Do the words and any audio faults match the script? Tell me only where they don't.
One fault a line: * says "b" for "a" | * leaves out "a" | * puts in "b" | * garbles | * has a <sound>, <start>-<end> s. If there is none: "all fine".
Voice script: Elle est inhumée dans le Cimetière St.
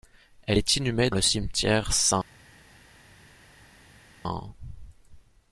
* leaves out "dans"